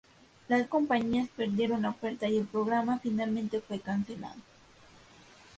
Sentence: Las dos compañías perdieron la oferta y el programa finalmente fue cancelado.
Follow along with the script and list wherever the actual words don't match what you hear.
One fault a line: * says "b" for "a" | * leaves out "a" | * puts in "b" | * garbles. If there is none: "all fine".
* leaves out "dos"